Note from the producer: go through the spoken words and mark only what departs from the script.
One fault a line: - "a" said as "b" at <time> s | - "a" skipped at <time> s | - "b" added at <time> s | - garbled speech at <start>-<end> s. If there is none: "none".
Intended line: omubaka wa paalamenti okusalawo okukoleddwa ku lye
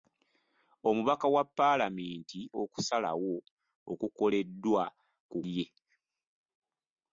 none